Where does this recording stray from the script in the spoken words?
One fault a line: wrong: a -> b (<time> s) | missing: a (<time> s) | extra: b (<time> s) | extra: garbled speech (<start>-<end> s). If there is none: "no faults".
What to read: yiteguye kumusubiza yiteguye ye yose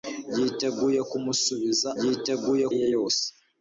no faults